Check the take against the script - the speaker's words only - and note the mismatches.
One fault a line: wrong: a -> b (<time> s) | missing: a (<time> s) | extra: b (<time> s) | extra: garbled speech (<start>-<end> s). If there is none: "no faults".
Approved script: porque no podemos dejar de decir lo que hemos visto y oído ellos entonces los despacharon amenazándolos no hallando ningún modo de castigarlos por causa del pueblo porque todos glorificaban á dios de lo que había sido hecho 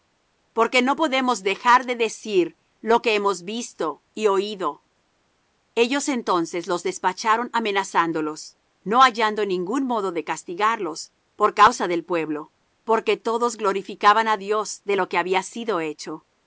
no faults